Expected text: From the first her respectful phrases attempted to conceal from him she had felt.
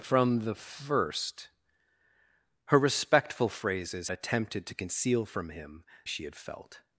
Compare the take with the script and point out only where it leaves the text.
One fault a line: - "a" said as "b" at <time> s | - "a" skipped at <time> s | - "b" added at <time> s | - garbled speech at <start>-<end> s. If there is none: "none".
none